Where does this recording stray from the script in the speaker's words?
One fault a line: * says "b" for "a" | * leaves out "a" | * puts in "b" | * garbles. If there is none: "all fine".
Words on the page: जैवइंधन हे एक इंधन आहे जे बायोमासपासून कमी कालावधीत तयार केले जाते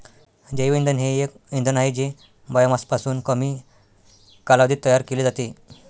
all fine